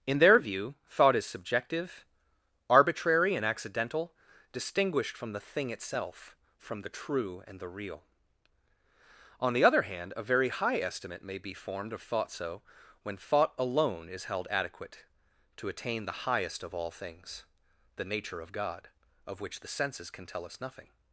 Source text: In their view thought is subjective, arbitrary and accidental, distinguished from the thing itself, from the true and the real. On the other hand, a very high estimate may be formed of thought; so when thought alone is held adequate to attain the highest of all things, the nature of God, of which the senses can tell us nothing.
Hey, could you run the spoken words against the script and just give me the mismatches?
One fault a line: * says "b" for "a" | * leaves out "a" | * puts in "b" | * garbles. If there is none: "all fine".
all fine